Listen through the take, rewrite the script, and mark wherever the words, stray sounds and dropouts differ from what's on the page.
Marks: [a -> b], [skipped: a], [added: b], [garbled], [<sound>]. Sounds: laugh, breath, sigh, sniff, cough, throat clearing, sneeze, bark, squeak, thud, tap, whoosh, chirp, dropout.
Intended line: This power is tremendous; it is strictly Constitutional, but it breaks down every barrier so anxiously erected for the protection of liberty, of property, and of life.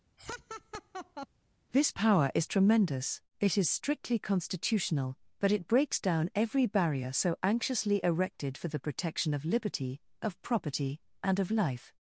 [laugh] This power is tremendous; it is strictly Constitutional, but it breaks down every barrier so anxiously erected for the protection of liberty, of property, and of life.